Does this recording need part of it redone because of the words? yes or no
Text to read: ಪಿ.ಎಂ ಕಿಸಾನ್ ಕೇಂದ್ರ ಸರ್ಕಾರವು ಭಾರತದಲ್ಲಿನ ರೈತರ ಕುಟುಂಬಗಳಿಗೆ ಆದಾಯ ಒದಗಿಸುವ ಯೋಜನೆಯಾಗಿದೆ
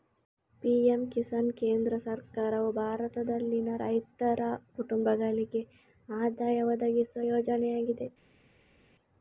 no